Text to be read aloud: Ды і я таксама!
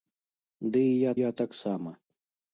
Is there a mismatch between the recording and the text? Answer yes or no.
yes